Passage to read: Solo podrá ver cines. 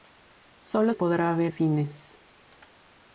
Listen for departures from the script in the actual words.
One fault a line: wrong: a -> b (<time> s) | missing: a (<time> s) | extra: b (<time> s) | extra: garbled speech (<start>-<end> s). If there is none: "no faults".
no faults